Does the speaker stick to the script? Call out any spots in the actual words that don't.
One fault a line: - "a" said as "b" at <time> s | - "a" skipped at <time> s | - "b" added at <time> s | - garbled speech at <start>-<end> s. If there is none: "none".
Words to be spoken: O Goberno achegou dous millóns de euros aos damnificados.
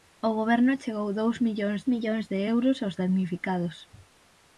- "millóns" added at 1.9 s